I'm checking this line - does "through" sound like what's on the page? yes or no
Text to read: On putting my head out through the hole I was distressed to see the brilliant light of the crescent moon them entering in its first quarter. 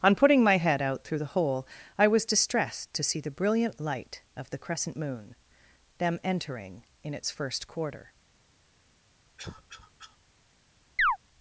yes